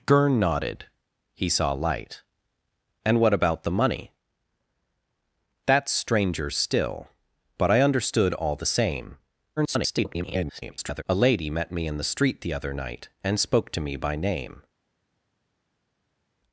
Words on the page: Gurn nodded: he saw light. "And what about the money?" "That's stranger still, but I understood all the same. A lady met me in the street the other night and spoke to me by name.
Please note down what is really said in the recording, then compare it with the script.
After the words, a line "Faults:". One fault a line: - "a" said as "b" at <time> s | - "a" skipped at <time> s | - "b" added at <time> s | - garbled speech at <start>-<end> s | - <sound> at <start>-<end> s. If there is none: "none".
Gurn nodded: he saw light. "And what about the money?" "That's stranger still, but I understood all the same. [garbled] A lady met me in the street the other night and spoke to me by name.
Faults:
- garbled speech at 9.6-11.0 s